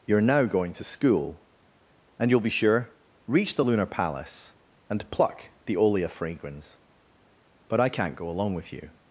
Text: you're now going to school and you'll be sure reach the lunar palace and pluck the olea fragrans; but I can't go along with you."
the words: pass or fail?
pass